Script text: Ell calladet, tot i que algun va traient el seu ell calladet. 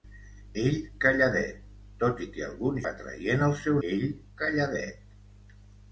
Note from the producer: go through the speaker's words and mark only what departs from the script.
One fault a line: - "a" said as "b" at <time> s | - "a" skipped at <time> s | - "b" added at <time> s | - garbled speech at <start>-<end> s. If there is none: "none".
none